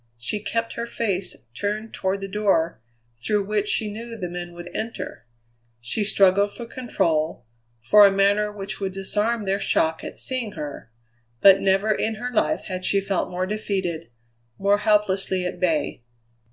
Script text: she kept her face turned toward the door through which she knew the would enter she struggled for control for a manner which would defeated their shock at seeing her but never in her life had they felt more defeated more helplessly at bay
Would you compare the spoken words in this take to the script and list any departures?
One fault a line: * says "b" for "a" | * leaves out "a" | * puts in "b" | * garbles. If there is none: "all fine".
* puts in "men"
* says "disarm" for "defeated"
* says "she" for "they"